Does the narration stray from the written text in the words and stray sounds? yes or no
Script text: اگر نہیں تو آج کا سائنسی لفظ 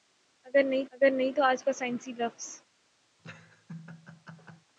yes